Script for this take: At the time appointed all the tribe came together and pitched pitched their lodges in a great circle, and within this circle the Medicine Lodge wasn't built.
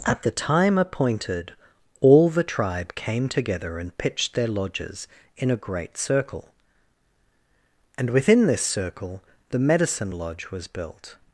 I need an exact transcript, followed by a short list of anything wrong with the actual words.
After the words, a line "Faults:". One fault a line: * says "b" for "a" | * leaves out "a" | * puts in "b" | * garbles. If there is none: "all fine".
At the time appointed all the tribe came together and pitched their lodges in a great circle, and within this circle the Medicine Lodge was built.
Faults:
* leaves out "pitched"
* says "was" for "wasn't"